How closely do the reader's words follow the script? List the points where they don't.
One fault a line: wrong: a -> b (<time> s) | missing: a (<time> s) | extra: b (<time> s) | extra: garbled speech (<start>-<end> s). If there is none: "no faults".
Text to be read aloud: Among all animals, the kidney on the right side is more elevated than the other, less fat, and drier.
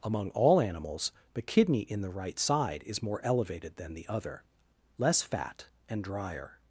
wrong: on -> in (1.8 s)